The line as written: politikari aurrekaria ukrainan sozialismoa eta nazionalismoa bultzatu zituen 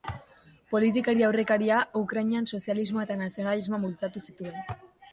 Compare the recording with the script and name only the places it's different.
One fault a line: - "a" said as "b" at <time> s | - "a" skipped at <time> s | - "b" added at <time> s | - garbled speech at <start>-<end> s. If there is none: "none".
none